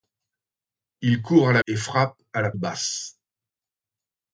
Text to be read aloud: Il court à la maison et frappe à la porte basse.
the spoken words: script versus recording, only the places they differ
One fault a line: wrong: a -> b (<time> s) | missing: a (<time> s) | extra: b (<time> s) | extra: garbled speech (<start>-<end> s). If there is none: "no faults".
missing: maison (1.6 s)
missing: porte (2.5 s)